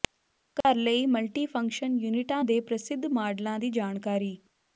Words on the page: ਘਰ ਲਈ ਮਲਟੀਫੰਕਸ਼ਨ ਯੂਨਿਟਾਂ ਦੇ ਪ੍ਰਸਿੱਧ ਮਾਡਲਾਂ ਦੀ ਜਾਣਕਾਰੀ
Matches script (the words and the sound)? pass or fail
fail